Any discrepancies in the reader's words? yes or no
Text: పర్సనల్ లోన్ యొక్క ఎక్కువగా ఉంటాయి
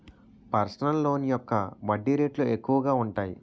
yes